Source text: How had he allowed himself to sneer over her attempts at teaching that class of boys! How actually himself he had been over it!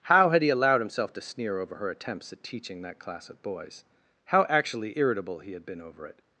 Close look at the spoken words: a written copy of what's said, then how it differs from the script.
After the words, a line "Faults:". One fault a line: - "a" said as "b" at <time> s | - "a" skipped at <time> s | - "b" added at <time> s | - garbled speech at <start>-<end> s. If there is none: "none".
How had he allowed himself to sneer over her attempts at teaching that class of boys! How actually irritable he had been over it!
Faults:
- "himself" said as "irritable" at 5.0 s